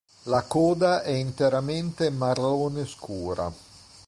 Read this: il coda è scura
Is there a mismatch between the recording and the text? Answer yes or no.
yes